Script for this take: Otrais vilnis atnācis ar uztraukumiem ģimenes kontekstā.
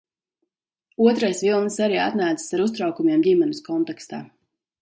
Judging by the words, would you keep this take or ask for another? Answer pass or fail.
fail